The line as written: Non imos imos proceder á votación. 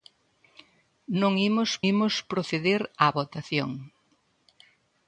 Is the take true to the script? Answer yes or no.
yes